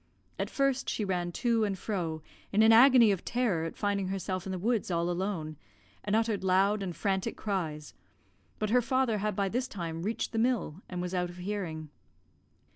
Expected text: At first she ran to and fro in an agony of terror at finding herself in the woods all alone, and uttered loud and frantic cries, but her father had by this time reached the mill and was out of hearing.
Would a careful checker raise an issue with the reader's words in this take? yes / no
no